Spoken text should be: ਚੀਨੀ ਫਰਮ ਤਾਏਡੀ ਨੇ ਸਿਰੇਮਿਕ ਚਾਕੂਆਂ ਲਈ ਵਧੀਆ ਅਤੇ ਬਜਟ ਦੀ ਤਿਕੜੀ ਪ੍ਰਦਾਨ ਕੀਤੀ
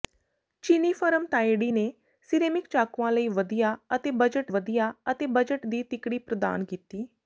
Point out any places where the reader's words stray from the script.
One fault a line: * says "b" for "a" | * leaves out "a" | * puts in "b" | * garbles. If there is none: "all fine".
* puts in "ਵਧੀਆ ਅਤੇ ਬਜਟ"